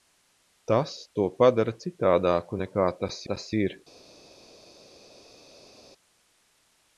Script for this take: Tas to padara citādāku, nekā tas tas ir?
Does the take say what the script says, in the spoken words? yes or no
yes